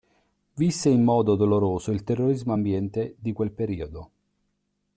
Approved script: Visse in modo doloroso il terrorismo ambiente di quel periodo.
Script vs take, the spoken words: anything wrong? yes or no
no